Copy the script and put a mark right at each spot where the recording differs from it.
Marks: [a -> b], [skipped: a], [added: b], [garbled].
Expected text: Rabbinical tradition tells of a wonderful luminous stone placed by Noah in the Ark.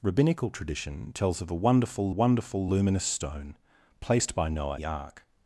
Rabbinical tradition tells of a wonderful [added: wonderful] luminous stone placed by Noah [skipped: in] the Ark.